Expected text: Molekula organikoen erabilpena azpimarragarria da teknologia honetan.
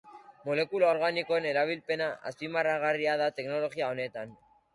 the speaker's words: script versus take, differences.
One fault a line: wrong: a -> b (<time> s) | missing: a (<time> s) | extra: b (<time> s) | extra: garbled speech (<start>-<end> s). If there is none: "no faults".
no faults